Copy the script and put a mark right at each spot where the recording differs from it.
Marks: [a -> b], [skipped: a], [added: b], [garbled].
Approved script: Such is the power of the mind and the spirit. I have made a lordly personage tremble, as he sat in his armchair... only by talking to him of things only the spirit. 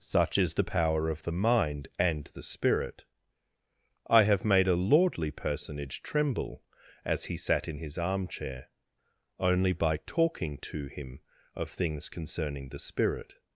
Such is the power of the mind and the spirit. I have made a lordly personage tremble, as he sat in his armchair... only by talking to him of things [only -> concerning] the spirit.